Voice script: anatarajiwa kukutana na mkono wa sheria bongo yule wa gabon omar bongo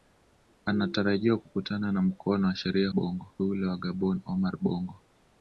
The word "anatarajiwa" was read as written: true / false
true